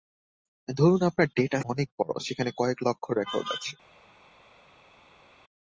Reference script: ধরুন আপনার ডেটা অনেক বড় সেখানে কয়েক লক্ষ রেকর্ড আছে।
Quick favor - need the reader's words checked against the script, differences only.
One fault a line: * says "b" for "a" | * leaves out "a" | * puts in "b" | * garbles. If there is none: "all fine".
all fine